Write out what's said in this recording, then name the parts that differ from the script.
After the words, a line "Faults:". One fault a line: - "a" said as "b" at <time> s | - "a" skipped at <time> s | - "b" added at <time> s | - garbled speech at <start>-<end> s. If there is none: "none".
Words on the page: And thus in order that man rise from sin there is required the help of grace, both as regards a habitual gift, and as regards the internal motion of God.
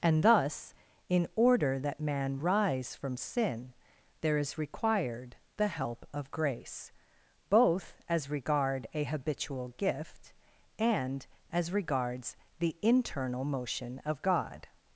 And thus in order that man rise from sin there is required the help of grace, both as regard a habitual gift, and as regards the internal motion of God.
Faults:
- "regards" said as "regard" at 8.3 s